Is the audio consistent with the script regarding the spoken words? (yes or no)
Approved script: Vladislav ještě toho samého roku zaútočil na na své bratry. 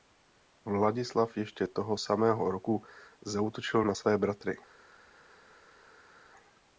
no